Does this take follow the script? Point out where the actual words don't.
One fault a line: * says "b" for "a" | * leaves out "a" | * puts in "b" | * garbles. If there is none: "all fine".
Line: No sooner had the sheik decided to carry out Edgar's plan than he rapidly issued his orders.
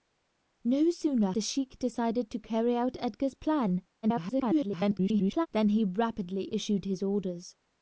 * leaves out "had"
* garbles